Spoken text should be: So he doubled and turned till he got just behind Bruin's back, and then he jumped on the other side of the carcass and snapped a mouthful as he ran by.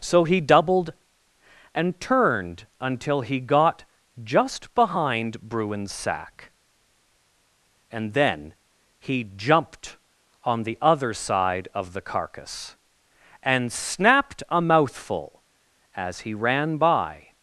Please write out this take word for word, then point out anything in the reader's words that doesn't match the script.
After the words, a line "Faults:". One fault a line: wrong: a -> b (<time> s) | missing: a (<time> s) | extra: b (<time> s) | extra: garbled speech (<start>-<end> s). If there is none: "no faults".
So he doubled and turned until he got just behind Bruin's sack, and then he jumped on the other side of the carcass and snapped a mouthful as he ran by.
Faults:
wrong: till -> until (2.8 s)
wrong: back -> sack (5.9 s)